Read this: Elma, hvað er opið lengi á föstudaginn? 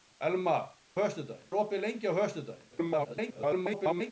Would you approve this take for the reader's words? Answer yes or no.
no